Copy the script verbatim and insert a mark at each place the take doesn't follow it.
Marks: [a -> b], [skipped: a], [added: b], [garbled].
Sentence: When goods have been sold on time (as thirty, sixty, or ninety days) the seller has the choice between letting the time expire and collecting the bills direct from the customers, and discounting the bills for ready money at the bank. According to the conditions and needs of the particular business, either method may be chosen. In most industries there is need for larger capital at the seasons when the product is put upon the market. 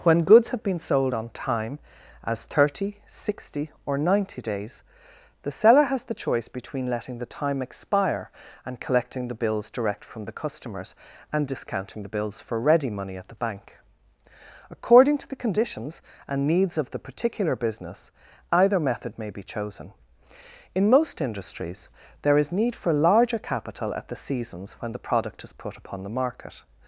When goods have been sold on time (as thirty, sixty, or ninety days) the seller has the choice between letting the time expire and collecting the bills direct from the customers, and discounting the bills for ready money at the bank. According to the conditions and needs of the particular business, either method may be chosen. In most industries there is need for larger capital at the seasons when the product is put upon the market.